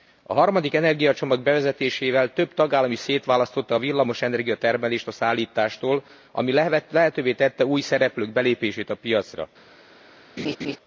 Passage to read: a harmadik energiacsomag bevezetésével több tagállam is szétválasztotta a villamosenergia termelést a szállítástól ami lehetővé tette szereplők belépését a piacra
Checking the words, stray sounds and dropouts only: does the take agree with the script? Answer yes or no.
no